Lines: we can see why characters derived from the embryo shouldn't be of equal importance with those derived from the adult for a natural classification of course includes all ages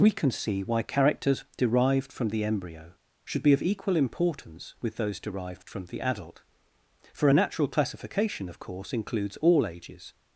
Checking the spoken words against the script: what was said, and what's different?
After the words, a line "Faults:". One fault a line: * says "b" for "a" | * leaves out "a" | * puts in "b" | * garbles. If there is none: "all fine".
we can see why characters derived from the embryo should be of equal importance with those derived from the adult for a natural classification of course includes all ages
Faults:
* says "should" for "shouldn't"